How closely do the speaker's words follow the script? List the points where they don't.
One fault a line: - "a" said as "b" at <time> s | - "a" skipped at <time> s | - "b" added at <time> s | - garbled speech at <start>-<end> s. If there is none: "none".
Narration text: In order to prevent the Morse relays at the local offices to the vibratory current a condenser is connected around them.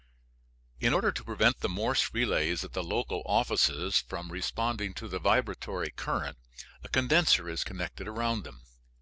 - "from responding" added at 4.0 s